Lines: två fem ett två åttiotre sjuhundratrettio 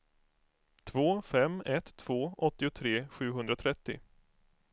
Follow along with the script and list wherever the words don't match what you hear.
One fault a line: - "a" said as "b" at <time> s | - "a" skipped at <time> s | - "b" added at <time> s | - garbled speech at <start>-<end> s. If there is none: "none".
none